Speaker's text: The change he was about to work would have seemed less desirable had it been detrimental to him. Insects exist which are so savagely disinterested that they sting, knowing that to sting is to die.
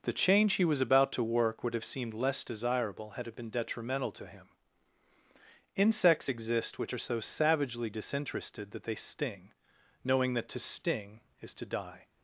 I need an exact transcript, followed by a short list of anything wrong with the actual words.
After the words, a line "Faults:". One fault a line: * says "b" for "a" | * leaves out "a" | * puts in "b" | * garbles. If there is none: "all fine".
The change he was about to work would have seemed less desirable had it been detrimental to him. Insects exist which are so savagely disinterested that they sting, knowing that to sting is to die.
Faults:
all fine